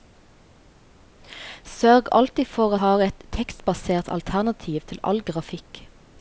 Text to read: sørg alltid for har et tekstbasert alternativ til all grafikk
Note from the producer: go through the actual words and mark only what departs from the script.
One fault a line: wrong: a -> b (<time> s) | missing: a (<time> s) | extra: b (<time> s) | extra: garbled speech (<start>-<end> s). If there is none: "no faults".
no faults